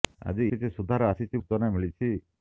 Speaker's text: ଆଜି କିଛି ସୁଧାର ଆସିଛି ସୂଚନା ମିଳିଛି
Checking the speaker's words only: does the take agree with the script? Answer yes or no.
yes